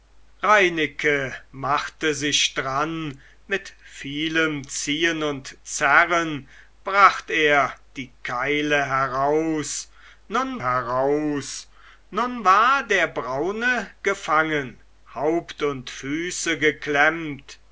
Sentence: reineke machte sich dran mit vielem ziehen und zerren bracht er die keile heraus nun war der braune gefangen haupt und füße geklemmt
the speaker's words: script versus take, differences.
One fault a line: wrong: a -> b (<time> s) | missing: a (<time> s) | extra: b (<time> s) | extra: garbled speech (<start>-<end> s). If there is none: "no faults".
extra: heraus nun (10.6 s)